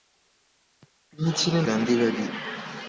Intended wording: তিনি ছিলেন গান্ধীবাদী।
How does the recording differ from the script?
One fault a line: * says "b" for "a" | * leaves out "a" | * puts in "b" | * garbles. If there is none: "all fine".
all fine